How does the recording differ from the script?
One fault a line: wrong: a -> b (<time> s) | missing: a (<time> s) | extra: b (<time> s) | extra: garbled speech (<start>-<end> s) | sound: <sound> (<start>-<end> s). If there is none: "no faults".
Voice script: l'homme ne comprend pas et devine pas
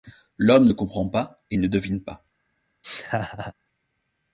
extra: ne (1.6 s)
sound: laugh (2.8-3.5 s)